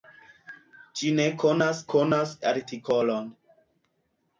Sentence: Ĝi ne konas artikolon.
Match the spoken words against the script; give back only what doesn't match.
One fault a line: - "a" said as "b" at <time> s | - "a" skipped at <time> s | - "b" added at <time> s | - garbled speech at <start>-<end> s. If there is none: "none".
- "konas" added at 1.9 s